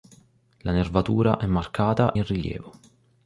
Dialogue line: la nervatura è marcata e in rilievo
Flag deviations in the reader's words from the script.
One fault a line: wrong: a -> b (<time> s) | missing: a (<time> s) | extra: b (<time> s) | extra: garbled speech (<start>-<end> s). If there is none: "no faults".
missing: e (2.1 s)